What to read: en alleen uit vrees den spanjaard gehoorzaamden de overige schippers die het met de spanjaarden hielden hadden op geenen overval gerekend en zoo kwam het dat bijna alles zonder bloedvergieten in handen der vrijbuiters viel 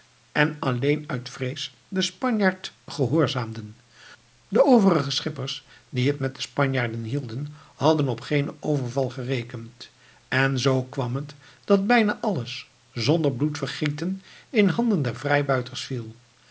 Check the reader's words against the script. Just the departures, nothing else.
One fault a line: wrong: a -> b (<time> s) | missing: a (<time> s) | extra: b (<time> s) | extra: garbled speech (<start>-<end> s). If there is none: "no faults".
no faults